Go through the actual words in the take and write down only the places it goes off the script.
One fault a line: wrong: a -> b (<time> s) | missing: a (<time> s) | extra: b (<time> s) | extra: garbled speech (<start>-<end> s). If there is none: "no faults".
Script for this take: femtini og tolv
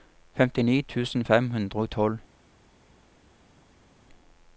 extra: tusen fem hundre (0.8 s)